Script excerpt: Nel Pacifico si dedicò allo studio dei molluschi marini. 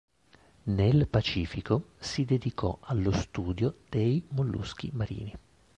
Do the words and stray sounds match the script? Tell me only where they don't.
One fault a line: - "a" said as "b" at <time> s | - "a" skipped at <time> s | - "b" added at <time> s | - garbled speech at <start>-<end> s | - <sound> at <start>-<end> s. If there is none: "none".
none